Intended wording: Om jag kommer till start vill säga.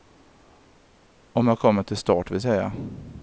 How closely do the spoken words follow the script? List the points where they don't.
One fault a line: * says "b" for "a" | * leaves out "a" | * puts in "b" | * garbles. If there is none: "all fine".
all fine